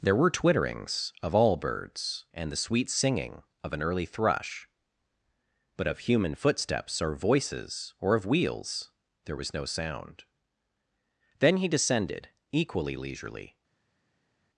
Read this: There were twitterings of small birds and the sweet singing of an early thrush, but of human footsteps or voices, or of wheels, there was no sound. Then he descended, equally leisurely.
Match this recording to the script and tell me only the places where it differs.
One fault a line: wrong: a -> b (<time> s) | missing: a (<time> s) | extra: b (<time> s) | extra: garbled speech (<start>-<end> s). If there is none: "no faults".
wrong: small -> all (1.3 s)